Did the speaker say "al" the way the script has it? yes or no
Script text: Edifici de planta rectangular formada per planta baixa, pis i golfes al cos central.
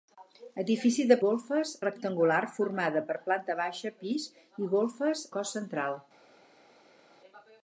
no